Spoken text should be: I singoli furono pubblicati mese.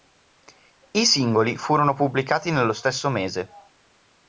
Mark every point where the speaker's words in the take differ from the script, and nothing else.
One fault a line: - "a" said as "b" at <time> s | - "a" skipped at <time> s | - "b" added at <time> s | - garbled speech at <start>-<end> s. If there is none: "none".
- "nello stesso" added at 2.5 s